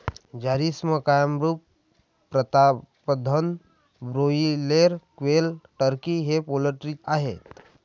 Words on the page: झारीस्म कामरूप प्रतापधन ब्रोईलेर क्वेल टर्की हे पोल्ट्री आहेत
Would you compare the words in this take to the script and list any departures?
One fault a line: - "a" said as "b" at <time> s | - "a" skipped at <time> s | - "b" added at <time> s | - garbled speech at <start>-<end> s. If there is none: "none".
none